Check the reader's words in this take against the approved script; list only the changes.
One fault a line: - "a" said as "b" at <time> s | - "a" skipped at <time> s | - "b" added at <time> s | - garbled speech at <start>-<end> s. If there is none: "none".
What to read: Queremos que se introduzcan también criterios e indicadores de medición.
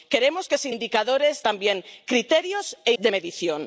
- "introduzcan" said as "indicadores" at 0.7 s
- "indicadores" skipped at 2.9 s